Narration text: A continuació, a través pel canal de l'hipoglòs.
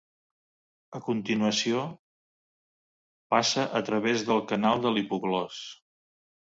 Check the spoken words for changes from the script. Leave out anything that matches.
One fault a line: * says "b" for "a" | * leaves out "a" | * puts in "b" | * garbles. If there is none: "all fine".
* puts in "passa"
* says "del" for "pel"